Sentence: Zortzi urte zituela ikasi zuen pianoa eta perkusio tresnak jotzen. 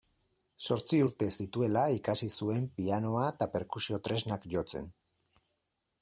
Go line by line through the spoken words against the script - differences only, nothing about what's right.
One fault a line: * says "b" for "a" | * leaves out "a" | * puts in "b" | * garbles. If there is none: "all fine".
all fine